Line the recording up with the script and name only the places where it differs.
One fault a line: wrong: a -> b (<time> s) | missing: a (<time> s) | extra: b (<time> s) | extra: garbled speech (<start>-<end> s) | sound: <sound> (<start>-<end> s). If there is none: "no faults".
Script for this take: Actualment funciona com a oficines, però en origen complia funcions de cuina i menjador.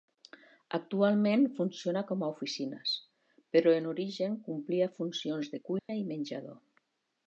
sound: dropout (5.8-5.9 s)